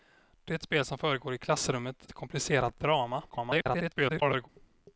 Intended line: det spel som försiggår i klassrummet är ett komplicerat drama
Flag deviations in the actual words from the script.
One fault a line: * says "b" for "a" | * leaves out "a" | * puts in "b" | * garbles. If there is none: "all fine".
* leaves out "är"
* garbles